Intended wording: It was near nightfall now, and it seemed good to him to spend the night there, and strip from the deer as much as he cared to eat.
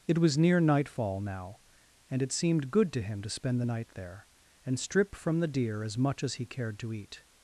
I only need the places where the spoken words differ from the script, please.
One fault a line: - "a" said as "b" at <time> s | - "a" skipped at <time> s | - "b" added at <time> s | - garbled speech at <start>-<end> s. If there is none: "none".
none